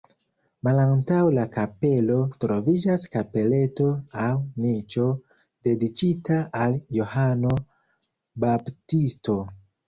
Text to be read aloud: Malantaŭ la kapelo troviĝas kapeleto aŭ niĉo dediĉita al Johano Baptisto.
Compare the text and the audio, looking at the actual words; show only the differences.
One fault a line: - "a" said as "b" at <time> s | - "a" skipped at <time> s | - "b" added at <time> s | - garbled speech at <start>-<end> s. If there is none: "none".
none